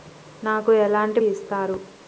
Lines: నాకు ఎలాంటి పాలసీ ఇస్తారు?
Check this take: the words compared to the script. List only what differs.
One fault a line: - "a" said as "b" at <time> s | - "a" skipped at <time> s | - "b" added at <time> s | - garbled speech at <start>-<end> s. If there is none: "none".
- "పాలసీ" skipped at 1.2 s